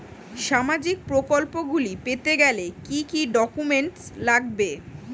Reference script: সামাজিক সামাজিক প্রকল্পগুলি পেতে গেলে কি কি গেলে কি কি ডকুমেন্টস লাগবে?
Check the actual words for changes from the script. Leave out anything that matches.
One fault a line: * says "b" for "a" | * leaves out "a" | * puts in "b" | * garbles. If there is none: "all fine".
* leaves out "সামাজিক"
* leaves out "গেলে কি কি"